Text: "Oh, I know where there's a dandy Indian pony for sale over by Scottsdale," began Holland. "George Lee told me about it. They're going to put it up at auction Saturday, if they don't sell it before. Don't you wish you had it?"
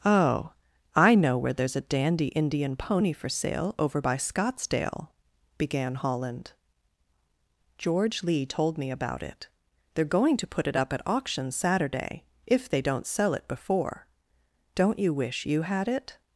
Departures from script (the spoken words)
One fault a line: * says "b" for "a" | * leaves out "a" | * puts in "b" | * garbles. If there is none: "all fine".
all fine